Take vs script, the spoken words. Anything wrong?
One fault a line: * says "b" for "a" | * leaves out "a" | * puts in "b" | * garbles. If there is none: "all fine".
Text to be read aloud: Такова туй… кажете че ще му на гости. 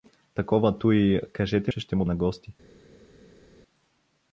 all fine